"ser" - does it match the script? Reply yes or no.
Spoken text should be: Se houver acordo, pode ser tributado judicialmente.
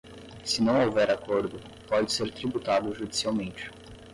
yes